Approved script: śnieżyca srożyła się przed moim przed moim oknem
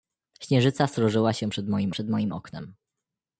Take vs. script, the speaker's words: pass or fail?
pass